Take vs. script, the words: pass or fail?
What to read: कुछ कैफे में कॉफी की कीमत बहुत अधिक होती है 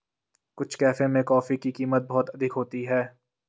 pass